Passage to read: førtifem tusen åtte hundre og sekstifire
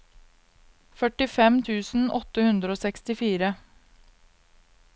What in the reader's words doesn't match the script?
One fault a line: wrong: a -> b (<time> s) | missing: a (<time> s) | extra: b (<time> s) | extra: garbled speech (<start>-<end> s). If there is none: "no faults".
no faults